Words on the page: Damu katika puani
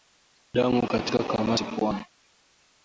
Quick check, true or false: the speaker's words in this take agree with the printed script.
false